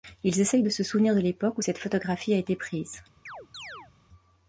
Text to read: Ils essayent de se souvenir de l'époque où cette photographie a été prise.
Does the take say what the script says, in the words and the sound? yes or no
no